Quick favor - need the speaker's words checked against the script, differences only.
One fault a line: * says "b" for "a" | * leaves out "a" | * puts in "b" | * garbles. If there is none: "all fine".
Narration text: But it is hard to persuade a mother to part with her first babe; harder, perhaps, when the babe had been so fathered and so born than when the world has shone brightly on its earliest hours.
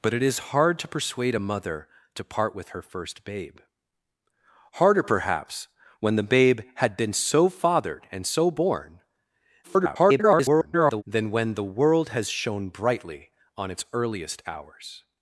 * garbles